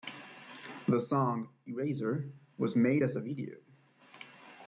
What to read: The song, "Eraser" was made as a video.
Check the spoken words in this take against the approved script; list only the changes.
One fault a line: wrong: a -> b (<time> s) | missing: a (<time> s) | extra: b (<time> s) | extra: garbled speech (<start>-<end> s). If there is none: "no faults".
no faults